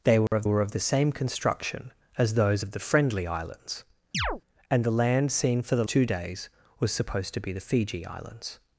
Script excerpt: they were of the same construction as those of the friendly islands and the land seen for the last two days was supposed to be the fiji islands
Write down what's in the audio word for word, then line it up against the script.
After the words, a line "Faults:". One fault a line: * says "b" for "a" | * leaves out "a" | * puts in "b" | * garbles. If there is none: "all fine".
they were of were of the same construction as those of the friendly islands and the land seen for the two days was supposed to be the fiji islands
Faults:
* puts in "were of"
* leaves out "last"